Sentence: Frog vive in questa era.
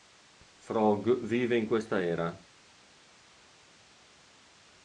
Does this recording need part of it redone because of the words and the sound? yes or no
no